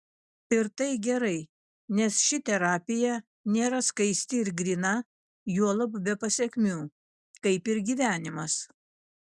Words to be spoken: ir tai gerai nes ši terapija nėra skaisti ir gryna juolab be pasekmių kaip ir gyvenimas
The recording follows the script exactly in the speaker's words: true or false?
true